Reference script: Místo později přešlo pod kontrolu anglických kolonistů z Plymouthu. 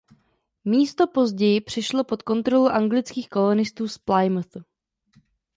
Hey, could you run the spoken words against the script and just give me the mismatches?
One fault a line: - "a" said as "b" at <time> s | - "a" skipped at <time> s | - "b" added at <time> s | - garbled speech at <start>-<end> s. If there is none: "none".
none